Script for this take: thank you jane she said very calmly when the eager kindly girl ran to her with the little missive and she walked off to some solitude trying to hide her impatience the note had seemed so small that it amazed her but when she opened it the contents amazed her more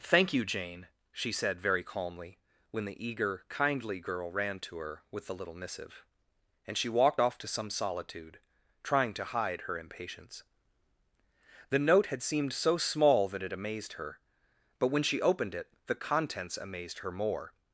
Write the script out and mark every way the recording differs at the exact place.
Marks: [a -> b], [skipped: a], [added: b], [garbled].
thank you jane she said very calmly when the eager kindly girl ran to her with the little missive and she walked off to some solitude trying to hide her impatience the note had seemed so small that it amazed her but when she opened it the contents amazed her more